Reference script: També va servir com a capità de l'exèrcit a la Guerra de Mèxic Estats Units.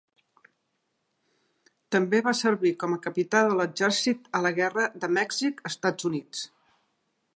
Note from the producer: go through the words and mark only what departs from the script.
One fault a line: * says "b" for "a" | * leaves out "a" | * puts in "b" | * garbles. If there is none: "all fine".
all fine